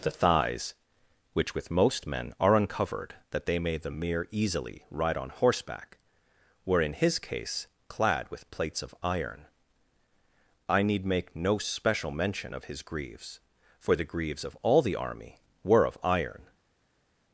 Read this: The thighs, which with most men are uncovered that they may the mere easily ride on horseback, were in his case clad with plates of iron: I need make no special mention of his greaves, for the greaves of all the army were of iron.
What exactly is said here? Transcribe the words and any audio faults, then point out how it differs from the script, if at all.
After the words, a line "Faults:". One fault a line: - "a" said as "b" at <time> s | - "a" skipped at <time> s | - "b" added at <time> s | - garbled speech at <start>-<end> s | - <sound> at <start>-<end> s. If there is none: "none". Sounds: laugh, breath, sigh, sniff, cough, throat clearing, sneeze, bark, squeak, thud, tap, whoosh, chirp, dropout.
The thighs, which with most men are uncovered that they may the mere easily ride on horseback, were in his case clad with plates of iron: I need make no special mention of his greaves, for the greaves of all the army were of iron.
Faults:
none